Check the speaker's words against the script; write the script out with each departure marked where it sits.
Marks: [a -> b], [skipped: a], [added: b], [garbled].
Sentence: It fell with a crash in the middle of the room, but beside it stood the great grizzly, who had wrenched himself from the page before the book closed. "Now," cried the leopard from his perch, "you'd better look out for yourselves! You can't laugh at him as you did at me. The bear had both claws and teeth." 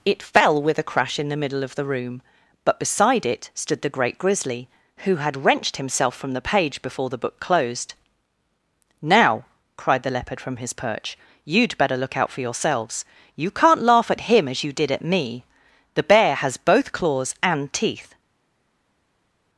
It fell with a crash in the middle of the room, but beside it stood the great grizzly, who had wrenched himself from the page before the book closed. "Now," cried the leopard from his perch, "you'd better look out for yourselves! You can't laugh at him as you did at me. The bear [had -> has] both claws and teeth."